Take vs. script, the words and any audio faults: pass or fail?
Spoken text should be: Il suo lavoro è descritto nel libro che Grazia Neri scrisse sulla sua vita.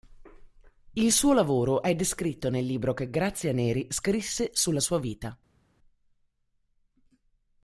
pass